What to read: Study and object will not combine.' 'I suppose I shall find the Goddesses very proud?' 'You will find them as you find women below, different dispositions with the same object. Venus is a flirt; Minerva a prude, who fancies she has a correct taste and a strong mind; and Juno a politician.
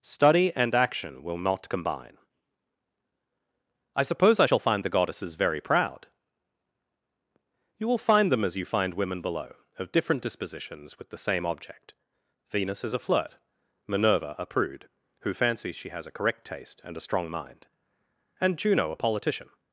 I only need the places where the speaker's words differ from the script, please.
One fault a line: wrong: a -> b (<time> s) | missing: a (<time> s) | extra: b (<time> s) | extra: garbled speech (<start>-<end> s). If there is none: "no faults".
wrong: object -> action (0.7 s)
extra: of (9.8 s)